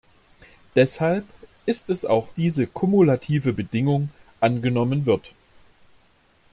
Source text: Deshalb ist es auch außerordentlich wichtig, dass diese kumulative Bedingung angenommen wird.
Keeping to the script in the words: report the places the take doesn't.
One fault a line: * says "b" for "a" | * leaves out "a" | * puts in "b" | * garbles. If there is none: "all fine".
* leaves out "außerordentlich wichtig dass"